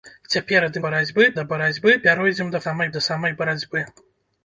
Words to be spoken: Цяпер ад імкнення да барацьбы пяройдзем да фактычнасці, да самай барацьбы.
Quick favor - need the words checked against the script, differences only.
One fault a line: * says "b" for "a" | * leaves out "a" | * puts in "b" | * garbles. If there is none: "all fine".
* says "барацьбы" for "імкнення"
* says "самай" for "фактычнасці"